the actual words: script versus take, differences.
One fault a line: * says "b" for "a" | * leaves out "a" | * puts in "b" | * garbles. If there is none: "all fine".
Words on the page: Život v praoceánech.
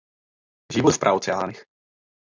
all fine